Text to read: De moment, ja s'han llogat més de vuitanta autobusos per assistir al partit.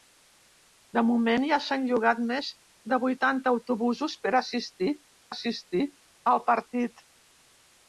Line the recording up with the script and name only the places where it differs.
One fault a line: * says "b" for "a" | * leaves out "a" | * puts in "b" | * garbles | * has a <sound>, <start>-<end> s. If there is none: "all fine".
* puts in "assistir"